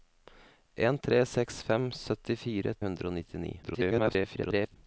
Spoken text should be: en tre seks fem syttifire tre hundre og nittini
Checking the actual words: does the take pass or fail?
fail